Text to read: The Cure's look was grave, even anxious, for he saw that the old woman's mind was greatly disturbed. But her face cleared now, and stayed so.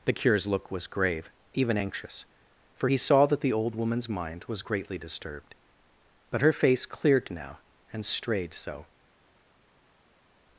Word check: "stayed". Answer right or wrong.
wrong